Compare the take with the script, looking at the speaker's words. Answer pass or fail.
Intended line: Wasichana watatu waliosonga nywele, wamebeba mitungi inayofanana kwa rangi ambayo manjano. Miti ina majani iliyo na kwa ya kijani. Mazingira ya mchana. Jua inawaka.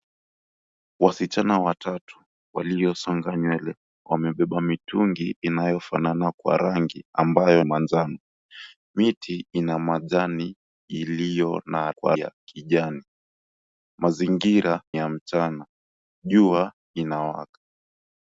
pass